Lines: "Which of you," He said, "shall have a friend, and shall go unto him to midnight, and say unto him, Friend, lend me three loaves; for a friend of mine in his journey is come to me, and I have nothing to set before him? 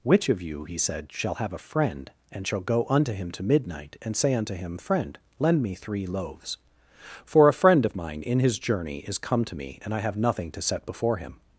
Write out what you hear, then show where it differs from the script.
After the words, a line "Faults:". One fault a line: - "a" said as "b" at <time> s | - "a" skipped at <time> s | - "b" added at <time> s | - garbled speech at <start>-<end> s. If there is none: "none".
"Which of you," He said, "shall have a friend, and shall go unto him to midnight, and say unto him, Friend, lend me three loaves; for a friend of mine in his journey is come to me, and I have nothing to set before him?
Faults:
none